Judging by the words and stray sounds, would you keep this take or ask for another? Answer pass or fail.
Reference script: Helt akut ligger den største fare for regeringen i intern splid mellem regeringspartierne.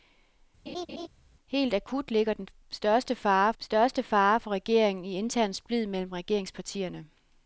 fail